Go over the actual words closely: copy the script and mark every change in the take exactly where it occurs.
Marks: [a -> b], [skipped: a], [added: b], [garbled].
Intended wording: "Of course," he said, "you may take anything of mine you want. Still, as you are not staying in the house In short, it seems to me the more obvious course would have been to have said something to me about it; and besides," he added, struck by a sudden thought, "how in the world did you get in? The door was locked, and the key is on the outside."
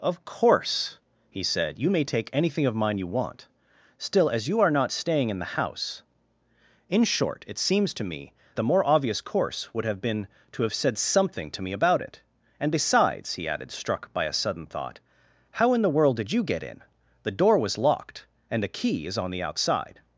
"Of course," he said, "you may take anything of mine you want. Still, as you are not staying in the house In short, it seems to me the more obvious course would have been to have said something to me about it; and besides," he added, struck by a sudden thought, "how in the world did you get in? The door was locked, and the key is on the outside."